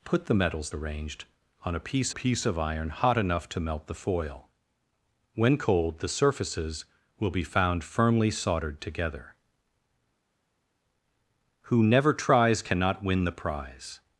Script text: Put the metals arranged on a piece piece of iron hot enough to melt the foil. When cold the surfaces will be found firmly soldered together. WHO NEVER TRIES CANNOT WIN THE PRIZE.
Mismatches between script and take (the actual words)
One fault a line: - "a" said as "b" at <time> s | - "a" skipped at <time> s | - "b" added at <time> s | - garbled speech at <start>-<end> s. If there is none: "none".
none